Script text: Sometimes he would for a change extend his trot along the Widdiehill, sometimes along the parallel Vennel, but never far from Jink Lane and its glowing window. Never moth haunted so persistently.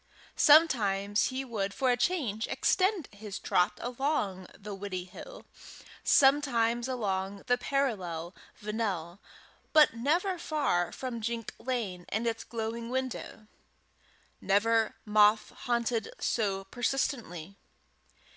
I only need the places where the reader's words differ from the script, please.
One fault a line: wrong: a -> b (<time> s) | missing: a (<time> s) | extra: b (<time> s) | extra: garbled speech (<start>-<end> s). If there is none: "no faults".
no faults